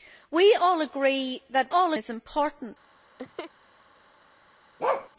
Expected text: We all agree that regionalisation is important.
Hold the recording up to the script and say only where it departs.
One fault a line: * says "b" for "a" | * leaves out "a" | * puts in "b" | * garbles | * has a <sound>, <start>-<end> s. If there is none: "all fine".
* says "all" for "regionalisation"
* has a laugh, 3.2-3.5 s
* has a bark, 4.8-5.1 s